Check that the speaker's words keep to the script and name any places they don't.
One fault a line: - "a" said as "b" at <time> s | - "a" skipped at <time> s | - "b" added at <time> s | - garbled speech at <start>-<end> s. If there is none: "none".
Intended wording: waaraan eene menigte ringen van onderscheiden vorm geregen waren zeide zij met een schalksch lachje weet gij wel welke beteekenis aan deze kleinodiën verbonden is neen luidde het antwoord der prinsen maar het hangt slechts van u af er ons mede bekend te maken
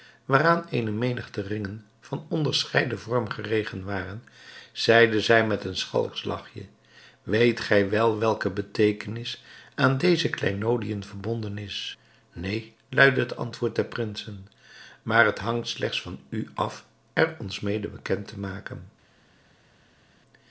none